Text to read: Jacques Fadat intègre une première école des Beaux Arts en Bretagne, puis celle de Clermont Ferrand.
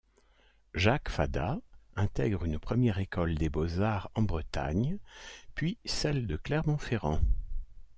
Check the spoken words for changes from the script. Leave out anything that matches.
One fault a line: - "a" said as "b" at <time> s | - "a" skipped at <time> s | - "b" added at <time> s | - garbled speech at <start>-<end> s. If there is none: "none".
none